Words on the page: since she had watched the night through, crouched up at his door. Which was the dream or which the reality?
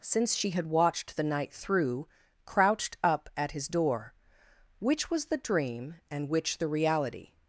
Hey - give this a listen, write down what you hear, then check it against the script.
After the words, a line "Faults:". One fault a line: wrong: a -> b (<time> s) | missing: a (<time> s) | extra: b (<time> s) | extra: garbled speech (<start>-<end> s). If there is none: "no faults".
since she had watched the night through, crouched up at his door. Which was the dream and which the reality?
Faults:
wrong: or -> and (6.1 s)